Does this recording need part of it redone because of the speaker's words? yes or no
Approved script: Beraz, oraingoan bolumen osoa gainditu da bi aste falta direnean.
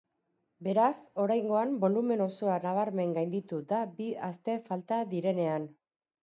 yes